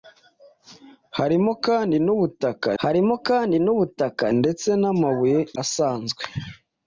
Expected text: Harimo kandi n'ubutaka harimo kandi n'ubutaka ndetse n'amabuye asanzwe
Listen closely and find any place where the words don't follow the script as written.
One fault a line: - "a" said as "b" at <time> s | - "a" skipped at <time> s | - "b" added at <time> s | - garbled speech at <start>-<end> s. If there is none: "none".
none